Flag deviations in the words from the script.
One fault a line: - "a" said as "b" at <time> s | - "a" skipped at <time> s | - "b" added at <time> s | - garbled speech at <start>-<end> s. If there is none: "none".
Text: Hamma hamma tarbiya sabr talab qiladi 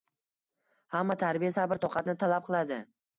- "hamma" skipped at 1.2 s
- "toqatni" added at 1.9 s